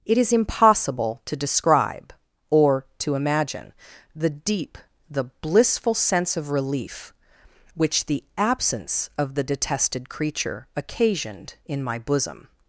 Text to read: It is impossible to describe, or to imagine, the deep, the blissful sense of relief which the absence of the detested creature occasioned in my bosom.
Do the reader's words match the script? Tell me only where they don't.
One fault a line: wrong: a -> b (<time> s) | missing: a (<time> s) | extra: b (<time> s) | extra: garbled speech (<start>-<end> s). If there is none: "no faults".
no faults